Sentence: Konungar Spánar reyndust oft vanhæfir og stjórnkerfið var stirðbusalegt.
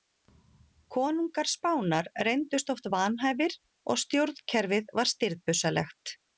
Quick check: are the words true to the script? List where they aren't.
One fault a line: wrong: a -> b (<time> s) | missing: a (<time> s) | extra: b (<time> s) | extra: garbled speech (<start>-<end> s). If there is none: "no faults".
no faults